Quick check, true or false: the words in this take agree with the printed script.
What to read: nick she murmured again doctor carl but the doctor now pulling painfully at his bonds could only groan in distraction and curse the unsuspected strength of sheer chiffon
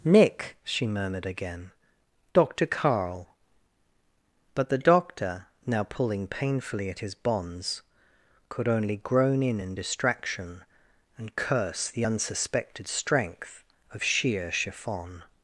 false